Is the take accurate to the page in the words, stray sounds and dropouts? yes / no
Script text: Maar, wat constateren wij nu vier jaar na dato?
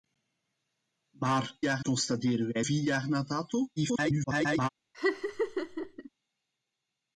no